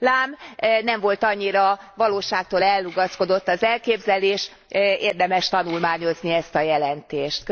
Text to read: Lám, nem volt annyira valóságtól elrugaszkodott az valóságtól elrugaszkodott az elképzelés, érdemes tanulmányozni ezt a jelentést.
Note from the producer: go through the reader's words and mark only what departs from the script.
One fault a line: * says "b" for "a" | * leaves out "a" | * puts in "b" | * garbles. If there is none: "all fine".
* leaves out "valóságtól elrugaszkodott az"